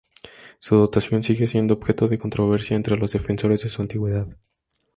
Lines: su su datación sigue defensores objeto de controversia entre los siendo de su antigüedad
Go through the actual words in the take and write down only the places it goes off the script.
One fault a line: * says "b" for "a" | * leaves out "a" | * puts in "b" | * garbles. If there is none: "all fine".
* leaves out "su"
* says "siendo" for "defensores"
* says "defensores" for "siendo"